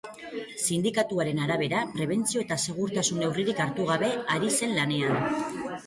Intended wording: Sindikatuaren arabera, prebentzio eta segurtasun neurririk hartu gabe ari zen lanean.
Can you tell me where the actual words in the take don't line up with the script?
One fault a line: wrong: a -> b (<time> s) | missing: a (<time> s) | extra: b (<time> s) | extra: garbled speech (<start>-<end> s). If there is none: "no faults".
no faults